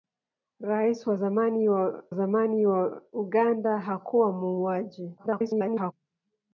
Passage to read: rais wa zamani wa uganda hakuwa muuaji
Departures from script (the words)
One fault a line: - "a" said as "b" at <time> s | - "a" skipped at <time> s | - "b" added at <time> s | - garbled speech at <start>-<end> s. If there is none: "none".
- "zamani wa" added at 2.1 s
- garbled speech at 5.2-5.9 s